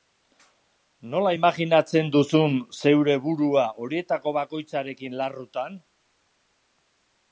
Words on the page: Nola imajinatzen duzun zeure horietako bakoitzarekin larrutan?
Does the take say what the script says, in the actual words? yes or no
no